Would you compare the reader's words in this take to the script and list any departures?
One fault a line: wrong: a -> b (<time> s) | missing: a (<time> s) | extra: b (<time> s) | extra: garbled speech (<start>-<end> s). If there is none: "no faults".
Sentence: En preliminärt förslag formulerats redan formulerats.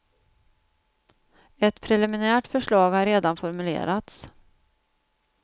wrong: En -> Ett (1.6 s)
wrong: formulerats -> har (2.9 s)